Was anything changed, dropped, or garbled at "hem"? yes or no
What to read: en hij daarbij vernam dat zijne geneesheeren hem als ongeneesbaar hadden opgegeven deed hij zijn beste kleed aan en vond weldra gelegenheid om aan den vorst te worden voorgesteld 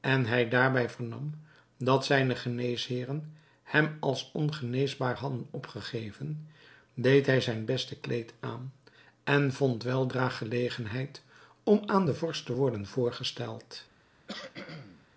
no